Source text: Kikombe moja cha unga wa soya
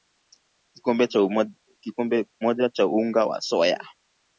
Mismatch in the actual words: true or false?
false